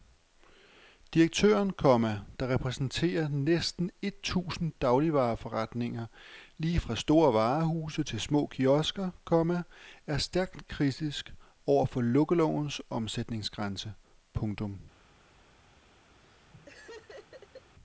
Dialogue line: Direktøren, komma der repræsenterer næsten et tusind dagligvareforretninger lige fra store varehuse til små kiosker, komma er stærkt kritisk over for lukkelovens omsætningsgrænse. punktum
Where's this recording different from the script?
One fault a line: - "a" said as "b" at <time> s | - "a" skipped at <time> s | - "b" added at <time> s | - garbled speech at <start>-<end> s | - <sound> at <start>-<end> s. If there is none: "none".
- laugh at 16.2-17.7 s